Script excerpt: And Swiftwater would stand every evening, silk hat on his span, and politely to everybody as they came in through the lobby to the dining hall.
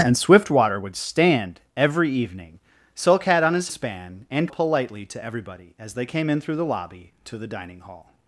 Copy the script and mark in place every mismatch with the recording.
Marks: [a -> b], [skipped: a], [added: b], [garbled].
And Swiftwater would stand every evening, silk hat on his span, and politely to everybody as they came in through the lobby to the dining hall.